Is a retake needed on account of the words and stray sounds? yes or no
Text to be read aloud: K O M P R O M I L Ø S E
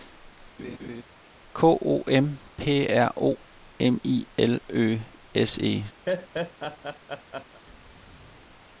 yes